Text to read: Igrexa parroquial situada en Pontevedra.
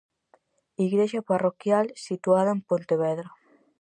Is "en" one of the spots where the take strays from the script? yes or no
no